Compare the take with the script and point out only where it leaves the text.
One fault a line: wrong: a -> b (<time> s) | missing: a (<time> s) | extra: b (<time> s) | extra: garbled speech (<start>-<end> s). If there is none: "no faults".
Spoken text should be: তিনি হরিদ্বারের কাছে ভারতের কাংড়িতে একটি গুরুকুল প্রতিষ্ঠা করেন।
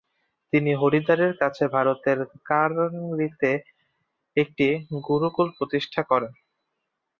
no faults